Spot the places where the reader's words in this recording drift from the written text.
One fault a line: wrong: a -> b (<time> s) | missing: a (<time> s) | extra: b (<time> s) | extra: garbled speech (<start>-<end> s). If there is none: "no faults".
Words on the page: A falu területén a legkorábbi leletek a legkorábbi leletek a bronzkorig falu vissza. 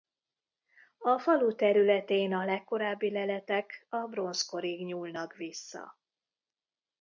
missing: legkorábbi leletek a (4.1 s)
wrong: falu -> nyúlnak (4.8 s)